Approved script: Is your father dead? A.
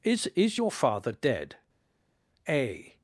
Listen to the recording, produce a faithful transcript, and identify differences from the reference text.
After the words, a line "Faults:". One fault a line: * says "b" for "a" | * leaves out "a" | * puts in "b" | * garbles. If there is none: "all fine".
Is is your father dead? A.
Faults:
* puts in "is"